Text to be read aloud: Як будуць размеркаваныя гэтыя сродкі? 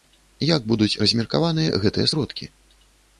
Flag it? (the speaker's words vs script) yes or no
no